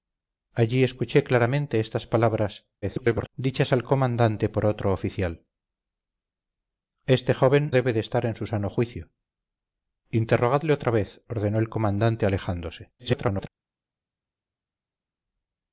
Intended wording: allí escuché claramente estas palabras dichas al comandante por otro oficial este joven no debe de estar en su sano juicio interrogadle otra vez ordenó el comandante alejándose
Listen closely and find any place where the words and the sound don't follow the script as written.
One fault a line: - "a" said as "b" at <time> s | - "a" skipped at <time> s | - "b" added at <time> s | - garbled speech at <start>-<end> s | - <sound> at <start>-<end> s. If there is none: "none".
- garbled speech at 2.8-3.3 s
- "no" skipped at 7.7 s
- garbled speech at 13.0-13.5 s